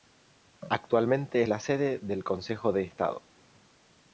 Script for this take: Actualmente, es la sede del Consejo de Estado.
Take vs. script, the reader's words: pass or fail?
fail